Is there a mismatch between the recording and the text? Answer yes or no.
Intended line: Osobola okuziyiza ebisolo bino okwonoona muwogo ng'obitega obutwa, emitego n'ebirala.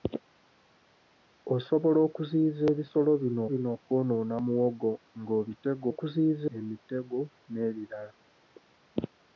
yes